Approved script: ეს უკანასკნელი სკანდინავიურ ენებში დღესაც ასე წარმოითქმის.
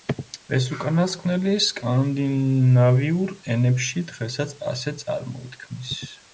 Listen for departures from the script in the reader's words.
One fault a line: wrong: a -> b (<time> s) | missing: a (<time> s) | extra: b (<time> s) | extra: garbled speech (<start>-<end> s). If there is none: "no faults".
no faults